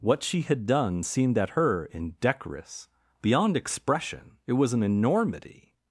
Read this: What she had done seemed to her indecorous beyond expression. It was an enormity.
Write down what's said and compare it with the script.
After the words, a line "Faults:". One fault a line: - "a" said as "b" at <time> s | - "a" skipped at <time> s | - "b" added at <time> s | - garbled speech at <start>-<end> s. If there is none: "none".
What she had done seemed at her indecorous beyond expression. It was an enormity.
Faults:
- "to" said as "at" at 1.4 s